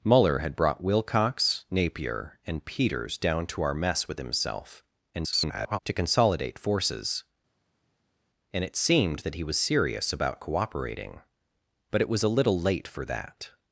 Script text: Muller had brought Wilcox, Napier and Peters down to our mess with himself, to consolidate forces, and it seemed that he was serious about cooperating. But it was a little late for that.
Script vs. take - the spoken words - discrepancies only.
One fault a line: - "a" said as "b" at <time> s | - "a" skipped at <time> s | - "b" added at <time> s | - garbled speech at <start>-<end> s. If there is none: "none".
- garbled speech at 5.1-5.8 s